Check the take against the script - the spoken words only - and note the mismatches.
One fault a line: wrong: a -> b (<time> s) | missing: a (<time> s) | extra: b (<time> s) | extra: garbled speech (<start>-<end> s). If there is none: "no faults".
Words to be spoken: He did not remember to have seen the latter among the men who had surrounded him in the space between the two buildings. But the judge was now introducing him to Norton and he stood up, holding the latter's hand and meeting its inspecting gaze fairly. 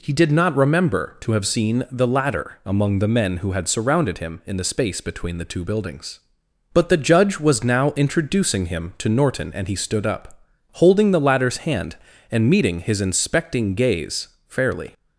wrong: its -> his (12.8 s)